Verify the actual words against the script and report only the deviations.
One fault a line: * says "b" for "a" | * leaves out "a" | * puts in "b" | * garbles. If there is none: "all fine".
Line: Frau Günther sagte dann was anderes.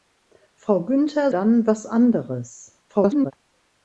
* leaves out "sagte"
* garbles